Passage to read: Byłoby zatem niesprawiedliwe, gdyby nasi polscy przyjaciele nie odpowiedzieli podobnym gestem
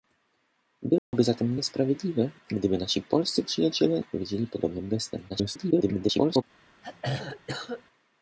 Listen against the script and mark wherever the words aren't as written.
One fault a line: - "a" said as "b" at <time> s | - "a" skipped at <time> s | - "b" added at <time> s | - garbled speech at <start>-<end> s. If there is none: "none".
- "nie" skipped at 4.0 s
- garbled speech at 5.3-6.4 s